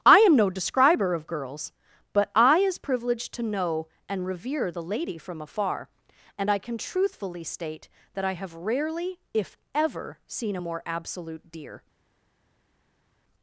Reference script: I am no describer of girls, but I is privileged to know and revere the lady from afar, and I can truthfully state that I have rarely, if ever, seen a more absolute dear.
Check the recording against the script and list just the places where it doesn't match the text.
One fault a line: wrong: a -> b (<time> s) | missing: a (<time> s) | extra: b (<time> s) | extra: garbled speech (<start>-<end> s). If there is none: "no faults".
no faults